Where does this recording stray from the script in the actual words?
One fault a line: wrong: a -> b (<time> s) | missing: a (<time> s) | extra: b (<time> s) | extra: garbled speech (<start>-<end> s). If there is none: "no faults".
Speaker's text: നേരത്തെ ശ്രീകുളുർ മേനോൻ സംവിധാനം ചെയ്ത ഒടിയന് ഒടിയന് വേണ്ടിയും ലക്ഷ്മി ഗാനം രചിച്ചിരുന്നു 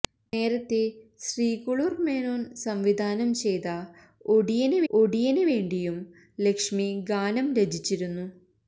no faults